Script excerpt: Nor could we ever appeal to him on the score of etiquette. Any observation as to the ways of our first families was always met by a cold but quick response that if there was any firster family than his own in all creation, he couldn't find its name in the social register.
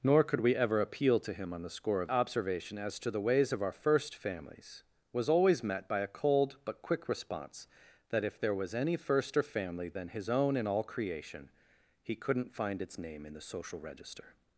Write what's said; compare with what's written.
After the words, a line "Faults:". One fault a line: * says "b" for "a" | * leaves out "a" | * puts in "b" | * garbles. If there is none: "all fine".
Nor could we ever appeal to him on the score of observation as to the ways of our first families was always met by a cold but quick response that if there was any firster family than his own in all creation, he couldn't find its name in the social register.
Faults:
* leaves out "etiquette Any"